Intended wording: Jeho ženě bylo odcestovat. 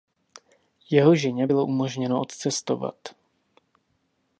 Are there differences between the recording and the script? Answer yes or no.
yes